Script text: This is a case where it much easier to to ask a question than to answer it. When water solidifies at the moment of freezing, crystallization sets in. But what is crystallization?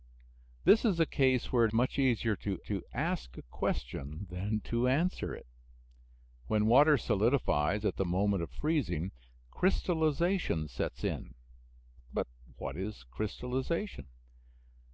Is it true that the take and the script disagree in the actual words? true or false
false